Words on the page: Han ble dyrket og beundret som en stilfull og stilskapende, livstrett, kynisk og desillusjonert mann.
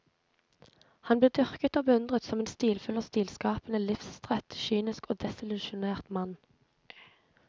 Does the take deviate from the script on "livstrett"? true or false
false